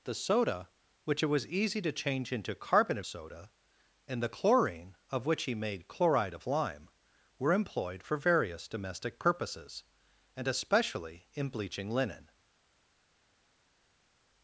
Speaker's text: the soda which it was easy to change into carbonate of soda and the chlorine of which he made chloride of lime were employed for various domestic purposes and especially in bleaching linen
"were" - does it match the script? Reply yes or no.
yes